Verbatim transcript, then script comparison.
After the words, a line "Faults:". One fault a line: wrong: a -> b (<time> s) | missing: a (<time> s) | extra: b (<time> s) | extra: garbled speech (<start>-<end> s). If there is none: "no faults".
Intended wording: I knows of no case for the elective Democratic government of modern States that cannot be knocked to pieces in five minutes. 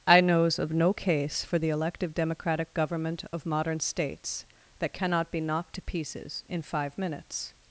I knows of no case for the elective Democratic government of modern States that cannot be knocked to pieces in five minutes.
Faults:
no faults